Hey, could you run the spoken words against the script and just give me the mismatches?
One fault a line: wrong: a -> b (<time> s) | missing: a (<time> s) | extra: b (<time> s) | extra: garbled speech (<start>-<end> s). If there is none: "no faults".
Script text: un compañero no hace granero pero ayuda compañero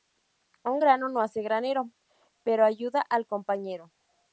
wrong: compañero -> grano (0.8 s)
extra: al (3.0 s)